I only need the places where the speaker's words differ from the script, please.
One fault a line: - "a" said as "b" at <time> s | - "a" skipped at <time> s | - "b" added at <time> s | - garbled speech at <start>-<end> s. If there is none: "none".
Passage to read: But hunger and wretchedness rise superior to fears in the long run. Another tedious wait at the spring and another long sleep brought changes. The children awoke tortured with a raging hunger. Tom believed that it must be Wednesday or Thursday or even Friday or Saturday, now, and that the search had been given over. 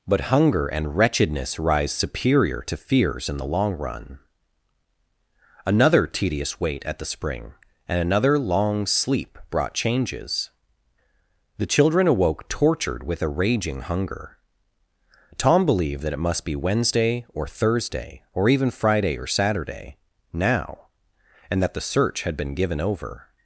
none